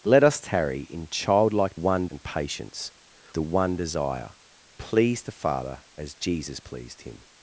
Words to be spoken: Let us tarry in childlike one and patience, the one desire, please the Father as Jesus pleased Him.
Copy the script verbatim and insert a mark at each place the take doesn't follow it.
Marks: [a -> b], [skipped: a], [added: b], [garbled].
Let us tarry in childlike one and patience, the one desire, please the Father as Jesus pleased Him.